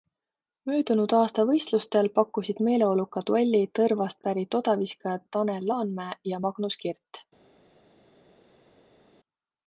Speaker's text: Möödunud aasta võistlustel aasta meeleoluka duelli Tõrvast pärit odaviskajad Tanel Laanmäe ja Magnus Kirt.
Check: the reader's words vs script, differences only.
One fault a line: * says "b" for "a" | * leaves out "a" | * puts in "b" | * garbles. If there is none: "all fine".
* says "pakkusid" for "aasta"